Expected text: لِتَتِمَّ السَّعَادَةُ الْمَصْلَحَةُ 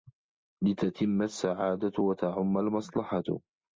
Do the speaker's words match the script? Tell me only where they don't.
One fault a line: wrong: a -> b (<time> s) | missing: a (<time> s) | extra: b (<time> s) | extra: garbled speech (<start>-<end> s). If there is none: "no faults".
extra: وَتَعُمَّ (2.0 s)